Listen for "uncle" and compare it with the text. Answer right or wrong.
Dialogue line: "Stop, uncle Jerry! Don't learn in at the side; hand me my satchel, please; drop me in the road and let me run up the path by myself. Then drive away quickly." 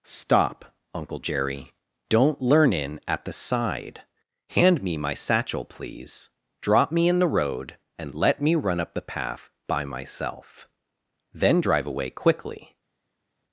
right